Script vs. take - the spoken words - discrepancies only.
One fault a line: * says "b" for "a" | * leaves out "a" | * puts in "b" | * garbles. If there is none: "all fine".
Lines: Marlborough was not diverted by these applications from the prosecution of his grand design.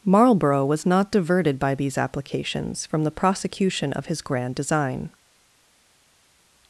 all fine